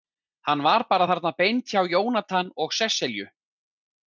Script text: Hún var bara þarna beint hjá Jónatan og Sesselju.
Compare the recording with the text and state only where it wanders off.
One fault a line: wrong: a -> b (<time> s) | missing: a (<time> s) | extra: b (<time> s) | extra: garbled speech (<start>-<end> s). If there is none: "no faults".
wrong: Hún -> Hann (0.5 s)